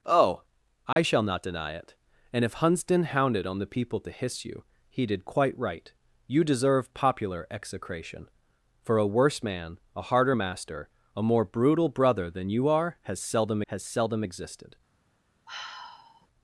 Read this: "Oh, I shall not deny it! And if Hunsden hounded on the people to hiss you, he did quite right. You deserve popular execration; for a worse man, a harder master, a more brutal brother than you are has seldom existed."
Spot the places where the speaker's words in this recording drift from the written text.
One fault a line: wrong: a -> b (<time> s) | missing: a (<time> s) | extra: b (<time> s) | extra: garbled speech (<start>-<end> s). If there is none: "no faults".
extra: has seldom (13.7 s)